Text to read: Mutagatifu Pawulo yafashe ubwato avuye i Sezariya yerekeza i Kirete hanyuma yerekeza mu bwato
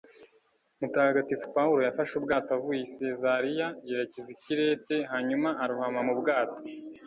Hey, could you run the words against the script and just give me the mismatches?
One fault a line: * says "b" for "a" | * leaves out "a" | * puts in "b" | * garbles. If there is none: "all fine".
* says "arohama" for "yerekeza"